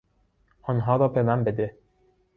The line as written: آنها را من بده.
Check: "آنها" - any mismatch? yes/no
no